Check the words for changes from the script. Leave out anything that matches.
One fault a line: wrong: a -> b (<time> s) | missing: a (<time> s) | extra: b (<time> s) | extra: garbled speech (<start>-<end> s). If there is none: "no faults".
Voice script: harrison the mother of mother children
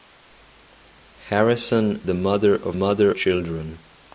no faults